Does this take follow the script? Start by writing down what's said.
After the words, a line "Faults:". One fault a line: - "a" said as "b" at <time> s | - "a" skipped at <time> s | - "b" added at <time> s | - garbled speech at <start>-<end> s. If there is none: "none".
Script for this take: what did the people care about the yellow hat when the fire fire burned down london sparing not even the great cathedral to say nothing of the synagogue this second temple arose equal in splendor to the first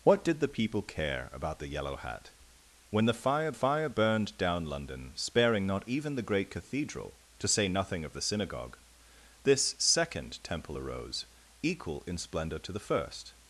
what did the people care about the yellow hat when the fire fire burned down london sparing not even the great cathedral to say nothing of the synagogue this second temple arose equal in splendor to the first
Faults:
none